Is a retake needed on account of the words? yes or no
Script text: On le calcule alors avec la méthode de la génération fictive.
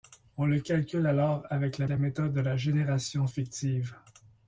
yes